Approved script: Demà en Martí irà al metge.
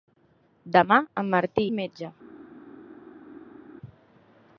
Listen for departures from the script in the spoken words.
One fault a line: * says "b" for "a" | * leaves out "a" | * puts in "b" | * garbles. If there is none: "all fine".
* leaves out "irà"